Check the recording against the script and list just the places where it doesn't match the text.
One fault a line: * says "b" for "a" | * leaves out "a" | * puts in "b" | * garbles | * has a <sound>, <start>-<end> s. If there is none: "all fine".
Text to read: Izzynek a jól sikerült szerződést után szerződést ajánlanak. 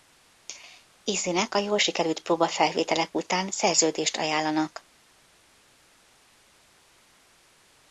* says "próbafelvételek" for "szerződést"